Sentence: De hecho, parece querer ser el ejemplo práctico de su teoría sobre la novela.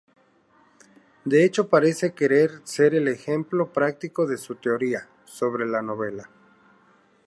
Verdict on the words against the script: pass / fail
pass